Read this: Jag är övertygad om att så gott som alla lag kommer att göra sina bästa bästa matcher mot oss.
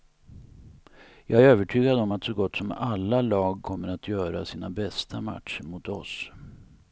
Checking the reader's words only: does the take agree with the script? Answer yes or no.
no